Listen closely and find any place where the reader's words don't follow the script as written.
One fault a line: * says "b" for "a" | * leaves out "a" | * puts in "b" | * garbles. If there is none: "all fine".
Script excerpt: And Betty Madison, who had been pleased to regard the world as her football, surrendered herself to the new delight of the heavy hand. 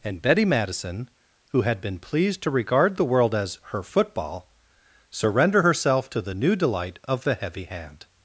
* says "surrender" for "surrendered"